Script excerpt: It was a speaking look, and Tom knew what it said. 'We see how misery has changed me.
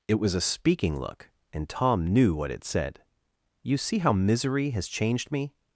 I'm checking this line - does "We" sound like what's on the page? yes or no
no